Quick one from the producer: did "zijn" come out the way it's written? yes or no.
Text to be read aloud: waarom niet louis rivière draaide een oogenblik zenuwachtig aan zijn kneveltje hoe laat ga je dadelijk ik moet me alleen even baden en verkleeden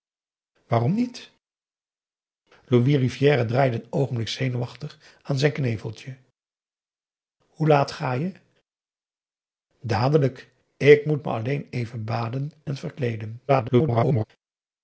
yes